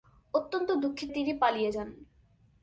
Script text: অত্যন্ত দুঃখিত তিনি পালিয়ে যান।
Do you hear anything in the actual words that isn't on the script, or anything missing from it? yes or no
no